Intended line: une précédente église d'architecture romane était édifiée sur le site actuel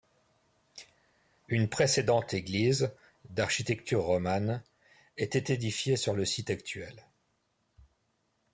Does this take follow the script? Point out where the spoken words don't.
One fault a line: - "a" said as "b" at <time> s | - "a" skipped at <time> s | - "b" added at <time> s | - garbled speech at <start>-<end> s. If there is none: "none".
none